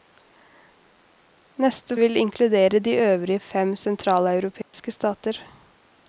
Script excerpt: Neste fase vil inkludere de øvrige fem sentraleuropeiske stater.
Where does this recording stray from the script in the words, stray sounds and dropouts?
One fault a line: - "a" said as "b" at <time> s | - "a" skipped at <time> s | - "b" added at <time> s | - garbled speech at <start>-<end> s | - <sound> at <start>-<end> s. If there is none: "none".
- "fase" skipped at 2.0 s
- dropout at 4.6-4.7 s